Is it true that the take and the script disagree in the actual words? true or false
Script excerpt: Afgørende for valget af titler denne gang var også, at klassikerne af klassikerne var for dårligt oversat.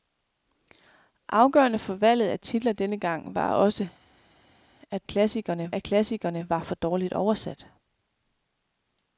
false